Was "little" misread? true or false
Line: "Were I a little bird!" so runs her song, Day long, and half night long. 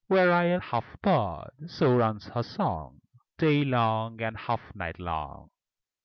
true